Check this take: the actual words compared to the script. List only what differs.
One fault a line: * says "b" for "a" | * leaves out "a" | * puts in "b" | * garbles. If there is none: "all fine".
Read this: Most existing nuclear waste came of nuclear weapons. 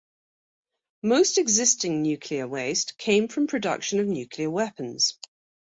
* puts in "from production"